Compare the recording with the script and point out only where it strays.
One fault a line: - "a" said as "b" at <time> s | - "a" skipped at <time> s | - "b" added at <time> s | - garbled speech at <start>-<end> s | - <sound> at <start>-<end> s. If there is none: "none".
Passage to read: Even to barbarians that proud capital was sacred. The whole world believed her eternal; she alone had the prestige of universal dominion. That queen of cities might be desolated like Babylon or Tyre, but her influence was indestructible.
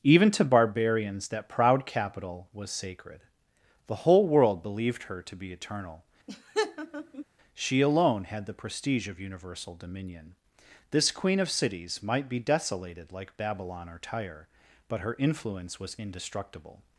- "to be" added at 5.2 s
- laugh at 6.3-7.2 s
- "That" said as "This" at 10.9 s